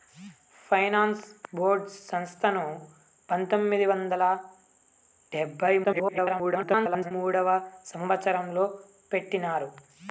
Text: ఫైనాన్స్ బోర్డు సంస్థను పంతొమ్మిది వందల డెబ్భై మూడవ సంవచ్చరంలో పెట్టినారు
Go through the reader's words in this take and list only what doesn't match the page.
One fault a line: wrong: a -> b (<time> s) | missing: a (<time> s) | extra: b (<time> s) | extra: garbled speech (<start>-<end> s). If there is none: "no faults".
extra: garbled speech (5.8-7.1 s)